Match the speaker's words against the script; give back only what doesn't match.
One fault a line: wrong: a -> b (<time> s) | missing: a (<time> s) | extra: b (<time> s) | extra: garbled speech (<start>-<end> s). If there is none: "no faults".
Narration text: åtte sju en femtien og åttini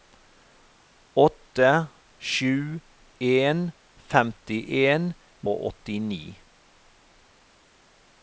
no faults